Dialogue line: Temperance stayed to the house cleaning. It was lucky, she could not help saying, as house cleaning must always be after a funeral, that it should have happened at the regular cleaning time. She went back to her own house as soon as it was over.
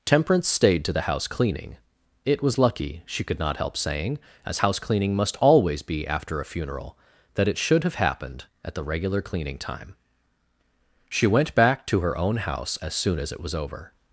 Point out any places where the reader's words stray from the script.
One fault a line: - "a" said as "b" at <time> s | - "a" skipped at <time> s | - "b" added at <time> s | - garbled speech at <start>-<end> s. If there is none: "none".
none